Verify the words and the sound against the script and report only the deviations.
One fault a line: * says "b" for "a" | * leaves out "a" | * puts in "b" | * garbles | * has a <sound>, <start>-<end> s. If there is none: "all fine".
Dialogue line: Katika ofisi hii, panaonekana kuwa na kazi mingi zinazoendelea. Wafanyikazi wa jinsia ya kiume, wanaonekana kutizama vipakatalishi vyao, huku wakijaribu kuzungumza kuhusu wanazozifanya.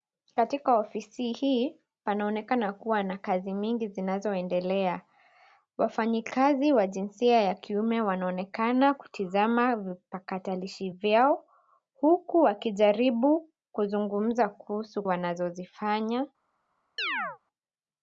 * has a chirp, 17.0-17.4 s